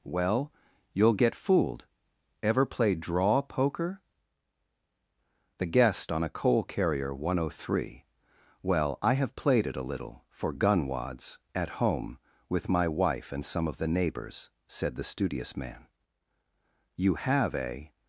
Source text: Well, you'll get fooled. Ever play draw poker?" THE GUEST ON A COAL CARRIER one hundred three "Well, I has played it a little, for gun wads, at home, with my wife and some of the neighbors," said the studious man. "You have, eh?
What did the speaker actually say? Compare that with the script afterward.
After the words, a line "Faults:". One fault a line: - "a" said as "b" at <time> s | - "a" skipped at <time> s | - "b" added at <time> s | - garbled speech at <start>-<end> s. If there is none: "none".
Well, you'll get fooled. Ever play draw poker?" THE GUEST ON A COAL CARRIER one hundred three "Well, I have played it a little, for gun wads, at home, with my wife and some of the neighbors," said the studious man. "You have, eh?
Faults:
- "has" said as "have" at 9.1 s